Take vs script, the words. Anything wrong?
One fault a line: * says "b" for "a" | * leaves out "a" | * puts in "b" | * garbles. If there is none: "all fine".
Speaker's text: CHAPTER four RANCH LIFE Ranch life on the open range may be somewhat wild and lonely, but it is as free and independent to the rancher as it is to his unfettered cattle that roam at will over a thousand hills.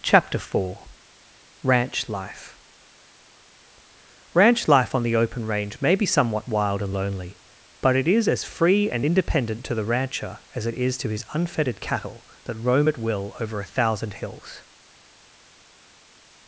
all fine